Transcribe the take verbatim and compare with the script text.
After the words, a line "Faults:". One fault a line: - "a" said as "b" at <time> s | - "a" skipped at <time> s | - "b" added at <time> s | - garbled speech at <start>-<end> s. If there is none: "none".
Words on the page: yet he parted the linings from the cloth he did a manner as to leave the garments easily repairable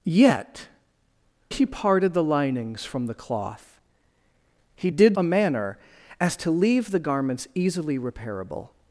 yet he parted the linings from the cloth he did a manner as to leave the garments easily repairable
Faults:
none